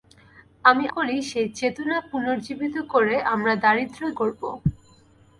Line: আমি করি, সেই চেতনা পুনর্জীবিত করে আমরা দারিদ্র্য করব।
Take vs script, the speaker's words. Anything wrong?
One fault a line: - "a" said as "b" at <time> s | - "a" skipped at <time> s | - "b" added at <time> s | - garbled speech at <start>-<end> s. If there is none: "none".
none